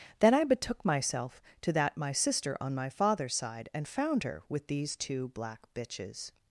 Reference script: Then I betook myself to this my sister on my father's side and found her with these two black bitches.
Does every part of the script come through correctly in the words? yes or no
no